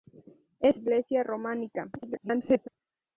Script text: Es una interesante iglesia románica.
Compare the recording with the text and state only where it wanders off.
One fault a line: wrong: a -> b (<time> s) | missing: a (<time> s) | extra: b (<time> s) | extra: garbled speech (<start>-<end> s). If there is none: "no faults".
missing: una interesante (0.8 s)
extra: garbled speech (2.0-2.7 s)